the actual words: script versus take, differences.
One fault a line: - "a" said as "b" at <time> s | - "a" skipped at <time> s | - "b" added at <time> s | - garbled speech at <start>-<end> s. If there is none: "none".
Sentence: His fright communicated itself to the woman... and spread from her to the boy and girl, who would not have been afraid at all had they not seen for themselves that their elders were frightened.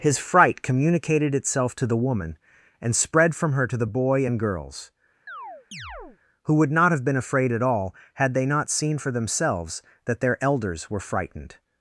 - "girl" said as "girls" at 4.4 s